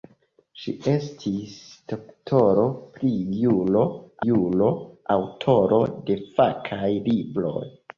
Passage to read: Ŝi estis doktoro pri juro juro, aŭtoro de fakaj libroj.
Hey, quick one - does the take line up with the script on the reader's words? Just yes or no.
yes